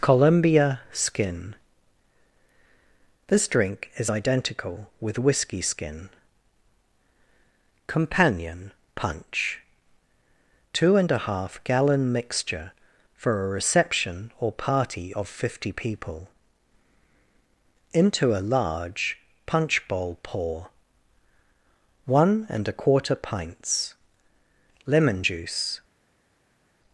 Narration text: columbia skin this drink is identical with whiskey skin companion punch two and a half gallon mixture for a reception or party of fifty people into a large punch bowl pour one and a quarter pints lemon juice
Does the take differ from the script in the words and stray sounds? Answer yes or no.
no